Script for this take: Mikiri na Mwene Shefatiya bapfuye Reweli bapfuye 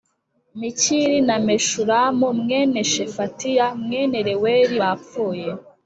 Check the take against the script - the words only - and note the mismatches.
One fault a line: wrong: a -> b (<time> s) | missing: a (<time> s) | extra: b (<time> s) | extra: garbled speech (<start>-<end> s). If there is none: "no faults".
extra: Meshulamu (1.5 s)
wrong: bapfuye -> mwene (3.8 s)